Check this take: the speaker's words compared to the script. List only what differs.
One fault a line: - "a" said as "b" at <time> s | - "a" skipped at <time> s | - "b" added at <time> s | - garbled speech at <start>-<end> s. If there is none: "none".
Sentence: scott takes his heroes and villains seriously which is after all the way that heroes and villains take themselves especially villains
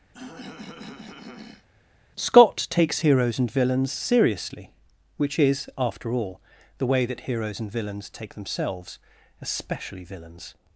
- "his" skipped at 3.0 s